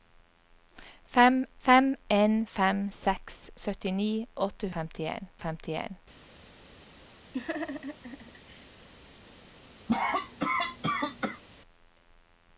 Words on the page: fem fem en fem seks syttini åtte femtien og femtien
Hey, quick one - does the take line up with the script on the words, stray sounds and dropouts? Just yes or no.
no